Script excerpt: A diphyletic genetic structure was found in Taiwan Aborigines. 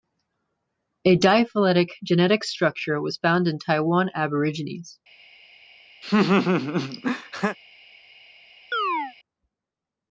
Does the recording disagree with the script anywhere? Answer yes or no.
no